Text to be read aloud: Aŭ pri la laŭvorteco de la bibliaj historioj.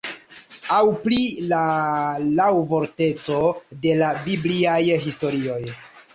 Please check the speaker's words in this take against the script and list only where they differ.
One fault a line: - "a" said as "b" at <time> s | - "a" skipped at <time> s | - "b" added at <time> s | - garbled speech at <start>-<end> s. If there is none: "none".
none